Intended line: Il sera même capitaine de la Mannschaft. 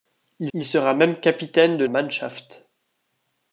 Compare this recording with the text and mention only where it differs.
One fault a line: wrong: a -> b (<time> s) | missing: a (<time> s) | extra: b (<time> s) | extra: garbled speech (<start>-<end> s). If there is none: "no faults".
extra: il (0.5 s)
missing: la (1.8 s)